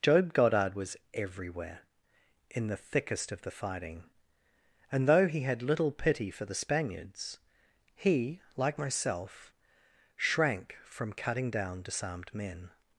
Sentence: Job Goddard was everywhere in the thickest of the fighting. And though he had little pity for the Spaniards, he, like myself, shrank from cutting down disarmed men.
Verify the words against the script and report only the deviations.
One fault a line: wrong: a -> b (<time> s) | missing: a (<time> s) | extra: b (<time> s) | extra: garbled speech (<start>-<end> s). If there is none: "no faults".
no faults